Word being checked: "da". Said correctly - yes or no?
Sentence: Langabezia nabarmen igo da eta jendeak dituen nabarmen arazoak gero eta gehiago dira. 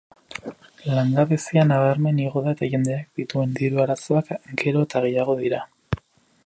yes